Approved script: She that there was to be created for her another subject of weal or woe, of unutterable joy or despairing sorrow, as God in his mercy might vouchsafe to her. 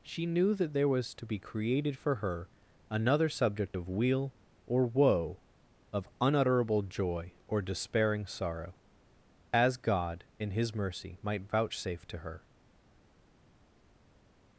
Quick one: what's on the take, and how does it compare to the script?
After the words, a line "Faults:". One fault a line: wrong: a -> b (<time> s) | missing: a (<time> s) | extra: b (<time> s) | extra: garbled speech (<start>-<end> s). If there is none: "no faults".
She knew that there was to be created for her another subject of weal or woe, of unutterable joy or despairing sorrow, as God in his mercy might vouchsafe to her.
Faults:
extra: knew (0.2 s)